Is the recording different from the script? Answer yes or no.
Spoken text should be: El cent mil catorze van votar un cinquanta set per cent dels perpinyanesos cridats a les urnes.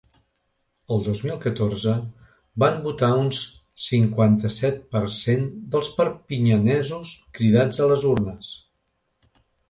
yes